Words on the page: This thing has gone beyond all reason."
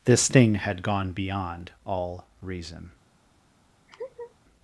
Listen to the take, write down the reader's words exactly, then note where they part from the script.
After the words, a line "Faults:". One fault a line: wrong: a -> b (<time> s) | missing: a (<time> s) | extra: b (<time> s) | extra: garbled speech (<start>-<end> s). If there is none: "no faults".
This thing had gone beyond all reason."
Faults:
wrong: has -> had (0.6 s)